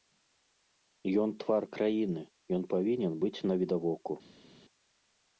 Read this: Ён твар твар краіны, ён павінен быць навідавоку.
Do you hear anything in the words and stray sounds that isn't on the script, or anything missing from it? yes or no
yes